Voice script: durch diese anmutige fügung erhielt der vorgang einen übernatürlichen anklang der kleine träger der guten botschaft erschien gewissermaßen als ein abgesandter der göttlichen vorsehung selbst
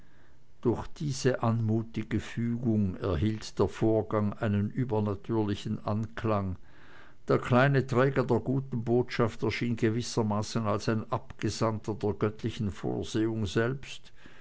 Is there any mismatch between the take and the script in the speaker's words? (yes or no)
no